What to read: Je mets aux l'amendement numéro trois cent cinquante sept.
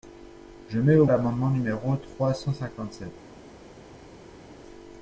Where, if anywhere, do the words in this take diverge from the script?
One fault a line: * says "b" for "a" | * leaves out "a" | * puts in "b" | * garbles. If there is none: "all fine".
all fine